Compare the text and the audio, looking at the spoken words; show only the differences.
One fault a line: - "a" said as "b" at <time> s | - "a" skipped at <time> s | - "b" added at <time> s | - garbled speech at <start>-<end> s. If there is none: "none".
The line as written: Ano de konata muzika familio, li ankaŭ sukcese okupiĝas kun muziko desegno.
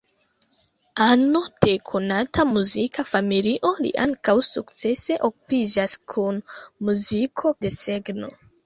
none